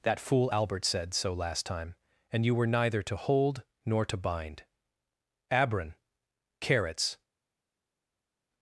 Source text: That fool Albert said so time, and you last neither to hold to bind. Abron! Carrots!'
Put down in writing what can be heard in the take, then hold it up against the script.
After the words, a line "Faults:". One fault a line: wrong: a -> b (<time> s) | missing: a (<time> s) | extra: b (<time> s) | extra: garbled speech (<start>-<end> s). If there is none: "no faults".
That fool Albert said so last time, and you were neither to hold nor to bind. Abron! Carrots!'
Faults:
extra: last (1.3 s)
wrong: last -> were (2.5 s)
extra: nor (3.8 s)